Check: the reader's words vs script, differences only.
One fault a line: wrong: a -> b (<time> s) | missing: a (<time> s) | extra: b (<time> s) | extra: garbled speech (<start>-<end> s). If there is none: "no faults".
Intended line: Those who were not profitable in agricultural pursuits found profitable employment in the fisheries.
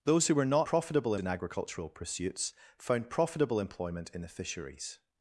no faults